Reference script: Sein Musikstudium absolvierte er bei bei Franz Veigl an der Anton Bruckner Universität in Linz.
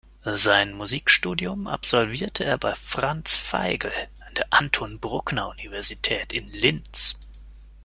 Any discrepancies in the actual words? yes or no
yes